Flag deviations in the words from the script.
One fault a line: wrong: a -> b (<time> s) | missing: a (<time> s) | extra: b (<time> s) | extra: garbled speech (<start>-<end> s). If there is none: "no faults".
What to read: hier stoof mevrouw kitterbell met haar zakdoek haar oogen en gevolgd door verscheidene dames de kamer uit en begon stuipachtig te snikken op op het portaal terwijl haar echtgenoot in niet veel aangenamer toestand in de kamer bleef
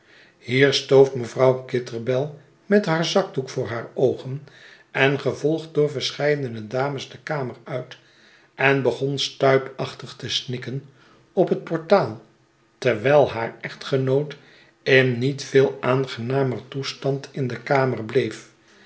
extra: voor (3.5 s)
missing: op (11.5 s)